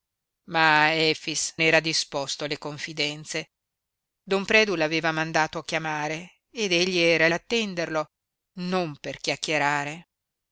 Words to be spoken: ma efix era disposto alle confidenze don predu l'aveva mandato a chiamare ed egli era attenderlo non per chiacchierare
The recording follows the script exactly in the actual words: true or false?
true